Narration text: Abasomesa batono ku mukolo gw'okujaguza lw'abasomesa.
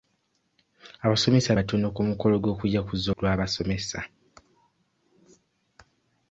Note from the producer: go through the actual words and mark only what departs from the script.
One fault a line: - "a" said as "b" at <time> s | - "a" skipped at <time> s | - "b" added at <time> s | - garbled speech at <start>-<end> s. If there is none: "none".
none